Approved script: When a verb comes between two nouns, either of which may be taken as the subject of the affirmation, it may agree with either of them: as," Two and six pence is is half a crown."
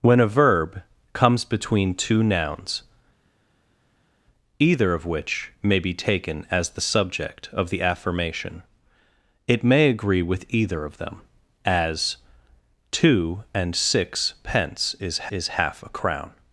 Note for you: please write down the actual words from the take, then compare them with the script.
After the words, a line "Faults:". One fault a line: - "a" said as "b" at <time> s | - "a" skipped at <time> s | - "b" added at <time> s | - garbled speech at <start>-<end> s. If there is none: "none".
When a verb comes between two nouns, either of which may be taken as the subject of the affirmation, it may agree with either of them: as," Two and six pence is is half a crown."
Faults:
none